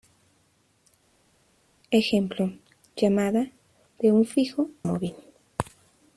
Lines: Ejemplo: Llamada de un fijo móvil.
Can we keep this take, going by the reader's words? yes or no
yes